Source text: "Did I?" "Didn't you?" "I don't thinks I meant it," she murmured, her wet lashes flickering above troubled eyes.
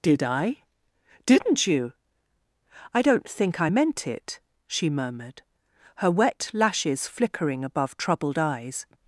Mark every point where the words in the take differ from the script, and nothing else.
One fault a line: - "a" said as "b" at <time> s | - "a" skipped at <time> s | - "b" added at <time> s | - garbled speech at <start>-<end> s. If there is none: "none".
- "thinks" said as "think" at 3.3 s